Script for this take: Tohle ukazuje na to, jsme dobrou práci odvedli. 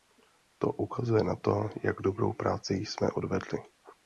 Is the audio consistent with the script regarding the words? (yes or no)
no